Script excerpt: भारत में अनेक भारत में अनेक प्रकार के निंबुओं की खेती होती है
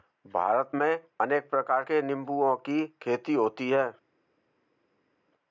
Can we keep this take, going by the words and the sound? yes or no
no